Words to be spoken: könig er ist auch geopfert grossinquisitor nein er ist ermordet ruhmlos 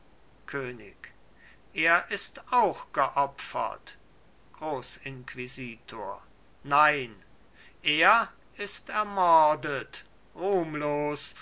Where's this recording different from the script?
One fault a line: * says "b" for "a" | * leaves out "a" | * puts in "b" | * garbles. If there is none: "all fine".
all fine